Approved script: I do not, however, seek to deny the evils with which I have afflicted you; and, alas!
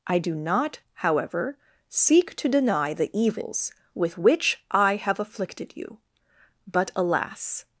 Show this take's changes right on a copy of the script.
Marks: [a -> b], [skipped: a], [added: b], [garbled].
I do not, however, seek to deny the evils with which I have afflicted you; [and, -> but] alas!